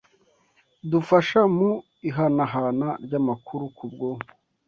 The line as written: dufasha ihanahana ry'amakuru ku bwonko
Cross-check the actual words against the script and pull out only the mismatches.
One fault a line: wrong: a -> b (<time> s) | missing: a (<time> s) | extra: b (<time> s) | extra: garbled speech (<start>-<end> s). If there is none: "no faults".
extra: mu (1.6 s)